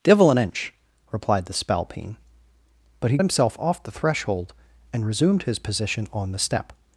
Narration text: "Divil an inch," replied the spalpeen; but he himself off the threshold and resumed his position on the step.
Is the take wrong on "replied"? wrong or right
right